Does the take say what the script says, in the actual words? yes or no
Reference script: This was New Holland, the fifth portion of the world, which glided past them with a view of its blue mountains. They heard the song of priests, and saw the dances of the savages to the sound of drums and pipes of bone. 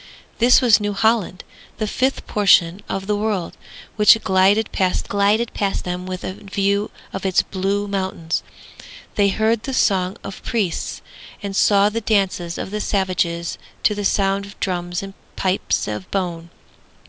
no